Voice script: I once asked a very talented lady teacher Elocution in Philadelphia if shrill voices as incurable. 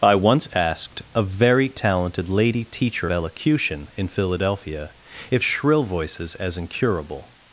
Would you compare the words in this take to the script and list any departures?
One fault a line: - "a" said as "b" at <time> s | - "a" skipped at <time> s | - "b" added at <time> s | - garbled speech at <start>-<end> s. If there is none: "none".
none